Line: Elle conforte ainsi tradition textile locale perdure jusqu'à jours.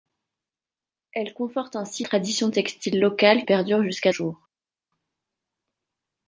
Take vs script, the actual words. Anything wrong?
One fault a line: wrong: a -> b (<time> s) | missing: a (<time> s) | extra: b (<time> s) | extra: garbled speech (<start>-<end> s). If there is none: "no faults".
no faults